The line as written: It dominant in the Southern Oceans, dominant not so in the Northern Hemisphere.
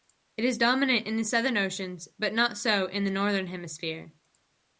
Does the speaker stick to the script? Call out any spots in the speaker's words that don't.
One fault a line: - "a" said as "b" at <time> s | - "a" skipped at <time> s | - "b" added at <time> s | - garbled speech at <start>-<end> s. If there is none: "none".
- "is" added at 0.5 s
- "dominant" said as "but" at 2.2 s